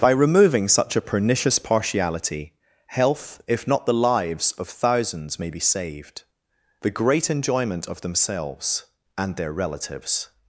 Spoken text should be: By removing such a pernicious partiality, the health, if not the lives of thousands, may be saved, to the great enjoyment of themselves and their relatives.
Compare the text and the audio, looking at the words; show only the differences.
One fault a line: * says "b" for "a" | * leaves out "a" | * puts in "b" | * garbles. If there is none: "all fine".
* leaves out "the"
* leaves out "to"